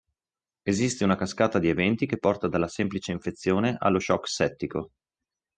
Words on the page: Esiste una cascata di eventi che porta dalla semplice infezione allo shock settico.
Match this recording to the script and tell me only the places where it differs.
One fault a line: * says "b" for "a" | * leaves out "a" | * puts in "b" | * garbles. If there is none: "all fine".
all fine